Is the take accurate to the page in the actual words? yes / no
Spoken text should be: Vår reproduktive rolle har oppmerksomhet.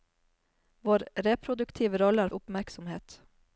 yes